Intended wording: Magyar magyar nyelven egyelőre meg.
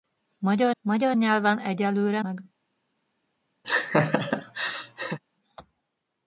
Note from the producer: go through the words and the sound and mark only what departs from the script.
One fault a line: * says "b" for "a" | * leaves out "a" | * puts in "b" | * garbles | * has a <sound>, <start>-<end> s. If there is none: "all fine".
* has a laugh, 3.6-5.2 s